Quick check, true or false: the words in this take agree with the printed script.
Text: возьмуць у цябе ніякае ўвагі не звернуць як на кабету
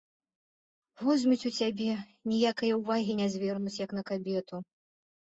true